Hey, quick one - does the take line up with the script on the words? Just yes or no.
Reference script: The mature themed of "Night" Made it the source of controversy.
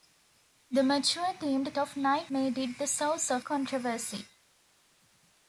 yes